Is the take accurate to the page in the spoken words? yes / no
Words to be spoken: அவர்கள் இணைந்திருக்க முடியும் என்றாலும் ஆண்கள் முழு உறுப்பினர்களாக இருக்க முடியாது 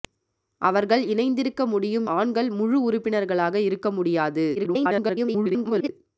no